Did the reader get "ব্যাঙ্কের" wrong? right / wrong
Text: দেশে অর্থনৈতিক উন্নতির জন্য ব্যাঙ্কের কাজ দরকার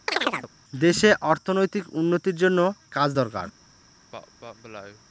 wrong